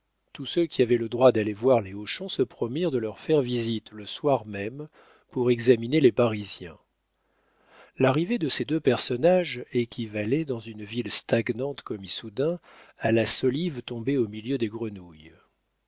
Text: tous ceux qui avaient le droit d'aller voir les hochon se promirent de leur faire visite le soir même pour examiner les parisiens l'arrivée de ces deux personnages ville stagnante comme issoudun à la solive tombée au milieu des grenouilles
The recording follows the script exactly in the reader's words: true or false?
false